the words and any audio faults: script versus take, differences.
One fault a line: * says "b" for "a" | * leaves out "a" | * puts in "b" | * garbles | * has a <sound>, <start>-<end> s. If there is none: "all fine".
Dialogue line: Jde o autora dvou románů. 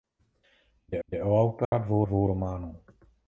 * puts in "jde"
* has a dropout, 1.6-1.7 s
* puts in "dvou"